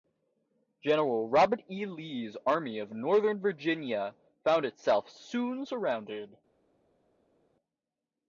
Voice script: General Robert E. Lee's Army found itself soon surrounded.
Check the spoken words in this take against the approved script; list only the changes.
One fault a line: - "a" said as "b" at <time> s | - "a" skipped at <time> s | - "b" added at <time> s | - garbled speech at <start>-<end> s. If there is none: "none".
- "of Northern Virginia" added at 2.8 s